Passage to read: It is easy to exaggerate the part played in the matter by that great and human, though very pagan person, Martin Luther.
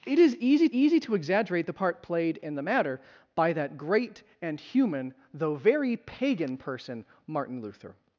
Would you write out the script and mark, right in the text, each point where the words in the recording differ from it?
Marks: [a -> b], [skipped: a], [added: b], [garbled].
It is easy [added: easy] to exaggerate the part played in the matter by that great and human, though very pagan person, Martin Luther.